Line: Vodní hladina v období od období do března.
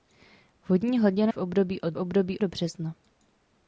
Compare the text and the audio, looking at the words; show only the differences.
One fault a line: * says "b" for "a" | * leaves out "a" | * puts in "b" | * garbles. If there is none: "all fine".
all fine